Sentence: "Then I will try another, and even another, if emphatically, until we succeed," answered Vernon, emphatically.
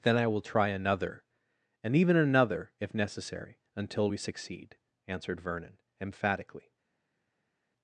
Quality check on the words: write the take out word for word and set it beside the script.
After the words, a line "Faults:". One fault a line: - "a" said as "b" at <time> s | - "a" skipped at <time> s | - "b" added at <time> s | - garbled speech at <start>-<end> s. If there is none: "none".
"Then I will try another, and even another, if necessary, until we succeed," answered Vernon, emphatically.
Faults:
- "emphatically" said as "necessary" at 2.9 s